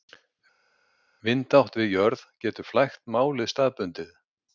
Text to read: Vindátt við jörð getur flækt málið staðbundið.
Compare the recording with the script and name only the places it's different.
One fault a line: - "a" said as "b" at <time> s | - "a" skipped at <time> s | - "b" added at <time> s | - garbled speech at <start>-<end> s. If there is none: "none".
none